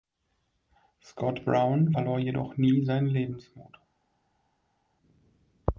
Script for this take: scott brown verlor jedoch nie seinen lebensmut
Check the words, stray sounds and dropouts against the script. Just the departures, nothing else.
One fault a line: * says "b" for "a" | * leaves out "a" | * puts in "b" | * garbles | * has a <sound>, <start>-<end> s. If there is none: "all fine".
all fine